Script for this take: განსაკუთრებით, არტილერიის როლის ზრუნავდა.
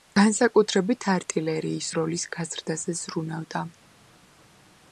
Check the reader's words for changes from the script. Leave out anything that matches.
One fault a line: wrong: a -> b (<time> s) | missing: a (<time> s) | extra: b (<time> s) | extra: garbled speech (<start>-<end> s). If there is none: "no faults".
extra: გაზრდაზე (2.4 s)